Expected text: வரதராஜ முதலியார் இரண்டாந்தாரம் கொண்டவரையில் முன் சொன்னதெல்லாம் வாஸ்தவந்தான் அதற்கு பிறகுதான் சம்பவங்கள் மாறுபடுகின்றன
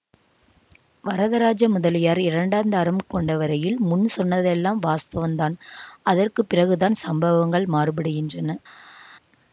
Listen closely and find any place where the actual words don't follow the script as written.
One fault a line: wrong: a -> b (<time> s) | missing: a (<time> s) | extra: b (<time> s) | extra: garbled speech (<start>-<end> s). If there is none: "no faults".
no faults